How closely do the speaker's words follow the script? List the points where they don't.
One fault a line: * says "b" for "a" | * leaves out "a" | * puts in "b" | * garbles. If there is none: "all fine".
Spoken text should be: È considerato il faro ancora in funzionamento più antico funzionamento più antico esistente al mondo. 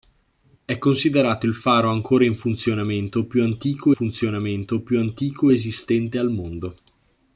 all fine